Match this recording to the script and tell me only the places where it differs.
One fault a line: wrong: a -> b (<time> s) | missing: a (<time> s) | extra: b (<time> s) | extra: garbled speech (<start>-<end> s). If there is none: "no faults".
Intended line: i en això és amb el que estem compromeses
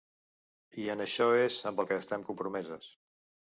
no faults